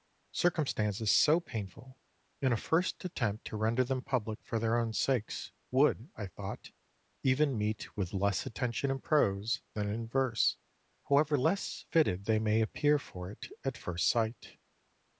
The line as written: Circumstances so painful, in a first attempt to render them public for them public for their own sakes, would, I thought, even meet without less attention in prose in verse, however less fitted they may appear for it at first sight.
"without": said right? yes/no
no